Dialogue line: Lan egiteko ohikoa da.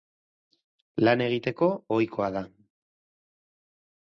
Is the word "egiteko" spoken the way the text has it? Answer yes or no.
yes